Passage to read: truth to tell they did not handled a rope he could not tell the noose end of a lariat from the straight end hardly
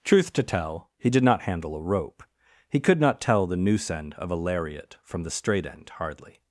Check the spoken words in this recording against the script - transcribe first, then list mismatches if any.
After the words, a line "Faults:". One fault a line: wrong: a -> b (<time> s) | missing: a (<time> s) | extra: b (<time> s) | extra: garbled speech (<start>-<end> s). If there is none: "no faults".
truth to tell he did not handle a rope he could not tell the noose end of a lariat from the straight end hardly
Faults:
wrong: they -> he (1.0 s)
wrong: handled -> handle (1.4 s)